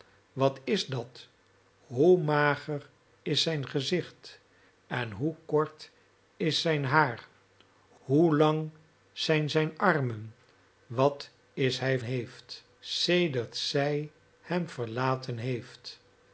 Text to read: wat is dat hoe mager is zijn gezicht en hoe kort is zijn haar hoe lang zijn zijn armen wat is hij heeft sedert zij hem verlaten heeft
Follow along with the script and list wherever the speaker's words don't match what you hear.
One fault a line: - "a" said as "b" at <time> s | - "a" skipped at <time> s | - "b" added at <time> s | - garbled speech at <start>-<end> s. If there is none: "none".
none